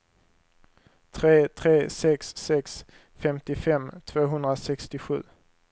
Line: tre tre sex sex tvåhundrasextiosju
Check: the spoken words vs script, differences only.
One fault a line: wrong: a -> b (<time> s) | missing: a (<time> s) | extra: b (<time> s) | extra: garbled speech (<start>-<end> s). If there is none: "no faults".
extra: femtiofem (3.2 s)